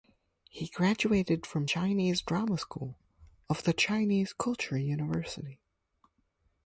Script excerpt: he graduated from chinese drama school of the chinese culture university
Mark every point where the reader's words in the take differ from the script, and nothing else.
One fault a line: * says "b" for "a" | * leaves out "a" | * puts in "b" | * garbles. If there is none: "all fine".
all fine